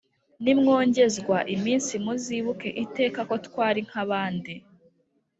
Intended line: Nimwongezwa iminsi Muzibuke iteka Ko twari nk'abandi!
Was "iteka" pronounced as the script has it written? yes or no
yes